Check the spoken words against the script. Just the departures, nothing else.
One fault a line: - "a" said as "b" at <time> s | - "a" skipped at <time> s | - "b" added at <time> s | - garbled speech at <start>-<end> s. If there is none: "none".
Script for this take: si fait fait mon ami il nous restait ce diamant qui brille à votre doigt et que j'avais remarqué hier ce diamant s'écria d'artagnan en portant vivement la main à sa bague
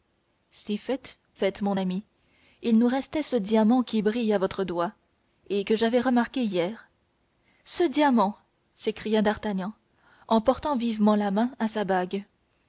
none